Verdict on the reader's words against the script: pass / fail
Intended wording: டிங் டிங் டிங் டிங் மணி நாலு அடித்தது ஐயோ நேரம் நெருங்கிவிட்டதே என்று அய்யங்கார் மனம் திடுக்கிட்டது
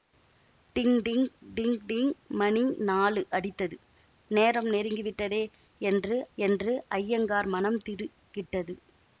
fail